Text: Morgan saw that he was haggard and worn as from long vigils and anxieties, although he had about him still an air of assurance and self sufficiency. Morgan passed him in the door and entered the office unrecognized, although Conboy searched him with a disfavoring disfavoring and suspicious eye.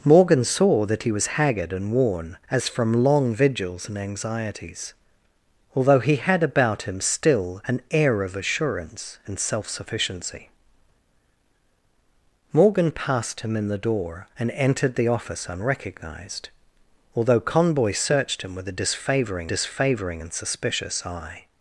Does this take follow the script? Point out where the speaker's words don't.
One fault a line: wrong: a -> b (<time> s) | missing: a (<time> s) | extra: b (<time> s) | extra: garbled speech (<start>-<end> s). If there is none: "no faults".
no faults